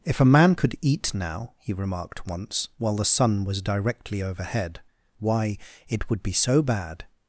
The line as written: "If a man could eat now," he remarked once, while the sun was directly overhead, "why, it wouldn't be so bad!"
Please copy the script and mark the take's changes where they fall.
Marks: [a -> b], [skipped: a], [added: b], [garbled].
"If a man could eat now," he remarked once, while the sun was directly overhead, "why, it [wouldn't -> would] be so bad!"